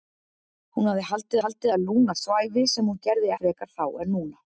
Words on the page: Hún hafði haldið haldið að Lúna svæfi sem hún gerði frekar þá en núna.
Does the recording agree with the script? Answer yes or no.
yes